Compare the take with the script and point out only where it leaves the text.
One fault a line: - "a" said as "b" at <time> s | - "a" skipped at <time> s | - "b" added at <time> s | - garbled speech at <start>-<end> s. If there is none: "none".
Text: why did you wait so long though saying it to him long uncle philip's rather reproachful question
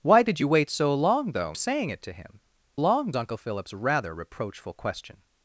none